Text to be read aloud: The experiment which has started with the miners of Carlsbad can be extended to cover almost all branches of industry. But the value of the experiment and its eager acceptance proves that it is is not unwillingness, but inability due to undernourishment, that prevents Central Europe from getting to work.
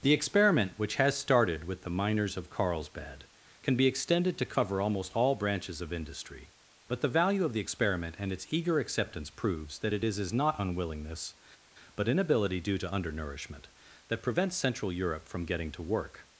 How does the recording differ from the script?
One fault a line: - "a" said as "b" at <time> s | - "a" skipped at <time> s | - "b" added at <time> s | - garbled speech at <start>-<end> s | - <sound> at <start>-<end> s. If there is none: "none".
none